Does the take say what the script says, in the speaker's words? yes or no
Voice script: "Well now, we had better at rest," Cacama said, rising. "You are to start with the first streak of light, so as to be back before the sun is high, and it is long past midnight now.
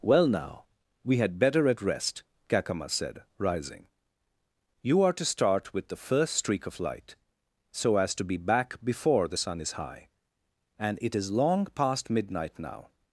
yes